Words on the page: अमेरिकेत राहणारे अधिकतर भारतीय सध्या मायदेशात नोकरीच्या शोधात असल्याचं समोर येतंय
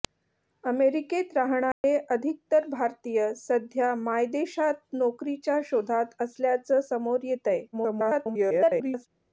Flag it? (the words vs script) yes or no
yes